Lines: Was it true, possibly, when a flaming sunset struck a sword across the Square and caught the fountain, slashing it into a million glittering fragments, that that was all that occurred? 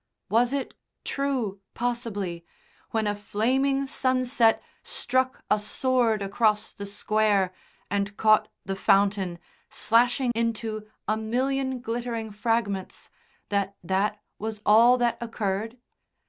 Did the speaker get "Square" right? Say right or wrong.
right